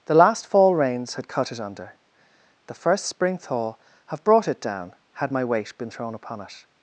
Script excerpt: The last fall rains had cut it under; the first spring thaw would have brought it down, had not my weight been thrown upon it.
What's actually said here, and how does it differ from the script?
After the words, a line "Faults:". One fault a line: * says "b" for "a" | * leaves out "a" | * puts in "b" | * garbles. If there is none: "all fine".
The last fall rains had cut it under; the first spring thaw have brought it down, had my weight been thrown upon it.
Faults:
* leaves out "would"
* leaves out "not"